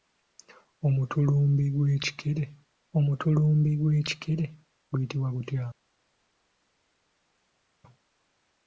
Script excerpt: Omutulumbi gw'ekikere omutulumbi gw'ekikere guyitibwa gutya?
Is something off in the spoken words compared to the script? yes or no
no